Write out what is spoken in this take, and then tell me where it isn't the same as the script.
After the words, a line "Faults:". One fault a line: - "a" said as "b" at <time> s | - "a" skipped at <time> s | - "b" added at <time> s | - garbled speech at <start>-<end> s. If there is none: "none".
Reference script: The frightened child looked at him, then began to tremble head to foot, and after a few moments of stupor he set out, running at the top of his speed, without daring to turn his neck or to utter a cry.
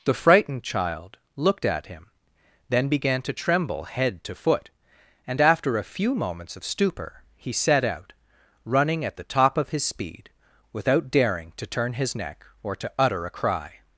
The frightened child looked at him, then began to tremble head to foot, and after a few moments of stupor he set out, running at the top of his speed, without daring to turn his neck or to utter a cry.
Faults:
none